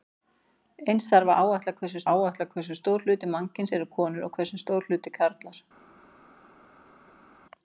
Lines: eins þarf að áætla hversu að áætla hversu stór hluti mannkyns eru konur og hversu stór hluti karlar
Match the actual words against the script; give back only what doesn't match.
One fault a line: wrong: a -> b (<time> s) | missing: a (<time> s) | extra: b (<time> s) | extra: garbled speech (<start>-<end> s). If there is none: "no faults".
no faults